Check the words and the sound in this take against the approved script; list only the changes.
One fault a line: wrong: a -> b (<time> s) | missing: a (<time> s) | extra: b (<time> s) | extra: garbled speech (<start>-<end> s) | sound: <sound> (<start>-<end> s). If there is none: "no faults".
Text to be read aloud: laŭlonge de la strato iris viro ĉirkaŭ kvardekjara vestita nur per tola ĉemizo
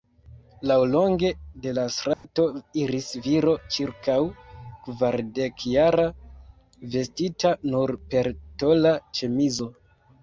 sound: dropout (2.1-2.2 s)